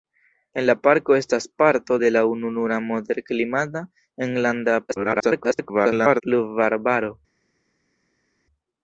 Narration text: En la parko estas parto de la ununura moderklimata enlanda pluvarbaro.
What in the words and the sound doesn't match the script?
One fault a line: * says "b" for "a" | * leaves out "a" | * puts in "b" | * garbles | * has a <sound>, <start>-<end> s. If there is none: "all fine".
* garbles